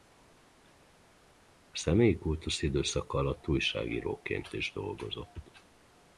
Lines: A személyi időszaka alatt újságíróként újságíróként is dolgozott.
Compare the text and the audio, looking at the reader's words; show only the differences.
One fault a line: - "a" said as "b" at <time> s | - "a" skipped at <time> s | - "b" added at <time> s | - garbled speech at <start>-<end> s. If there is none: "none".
- "kultusz" added at 2.2 s
- "újságíróként" skipped at 4.5 s